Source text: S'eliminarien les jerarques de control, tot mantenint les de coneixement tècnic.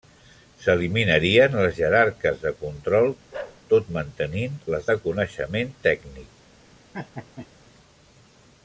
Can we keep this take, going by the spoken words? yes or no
yes